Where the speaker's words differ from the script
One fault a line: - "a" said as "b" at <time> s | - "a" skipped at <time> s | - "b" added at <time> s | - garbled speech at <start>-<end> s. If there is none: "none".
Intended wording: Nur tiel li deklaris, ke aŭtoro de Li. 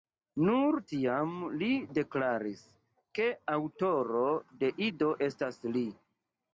- "tiel" said as "tiam" at 0.9 s
- "Ido estas" added at 4.9 s